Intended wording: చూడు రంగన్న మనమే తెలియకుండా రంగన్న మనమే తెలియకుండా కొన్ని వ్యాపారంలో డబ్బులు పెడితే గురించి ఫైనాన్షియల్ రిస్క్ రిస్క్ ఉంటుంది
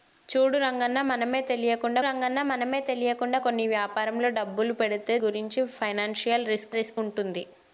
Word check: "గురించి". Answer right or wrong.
right